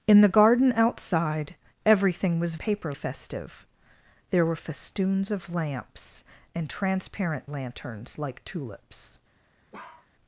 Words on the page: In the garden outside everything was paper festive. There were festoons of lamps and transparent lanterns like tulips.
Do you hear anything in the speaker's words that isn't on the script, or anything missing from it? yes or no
no